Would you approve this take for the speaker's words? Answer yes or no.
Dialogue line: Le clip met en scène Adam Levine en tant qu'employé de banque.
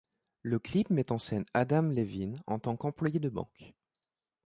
yes